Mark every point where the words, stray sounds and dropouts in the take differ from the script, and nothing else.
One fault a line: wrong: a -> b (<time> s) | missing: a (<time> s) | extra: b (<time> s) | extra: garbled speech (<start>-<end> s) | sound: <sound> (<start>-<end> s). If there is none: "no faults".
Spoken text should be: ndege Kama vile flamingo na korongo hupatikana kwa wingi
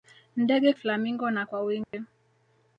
missing: Kama vile (0.7 s)
missing: korongo hupatikana (1.4 s)
sound: dropout (1.8-1.9 s)